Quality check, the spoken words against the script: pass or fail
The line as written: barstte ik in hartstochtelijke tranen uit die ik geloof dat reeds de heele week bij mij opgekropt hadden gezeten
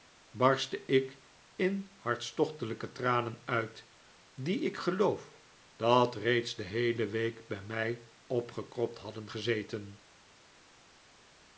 pass